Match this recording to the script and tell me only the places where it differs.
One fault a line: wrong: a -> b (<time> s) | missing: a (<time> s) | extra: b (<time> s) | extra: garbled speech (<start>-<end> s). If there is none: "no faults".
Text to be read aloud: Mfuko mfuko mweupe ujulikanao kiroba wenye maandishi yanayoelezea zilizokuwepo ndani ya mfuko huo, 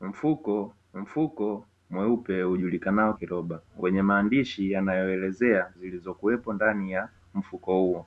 no faults